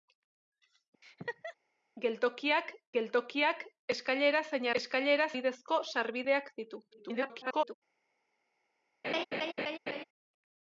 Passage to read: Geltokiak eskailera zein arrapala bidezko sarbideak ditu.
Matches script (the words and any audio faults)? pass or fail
fail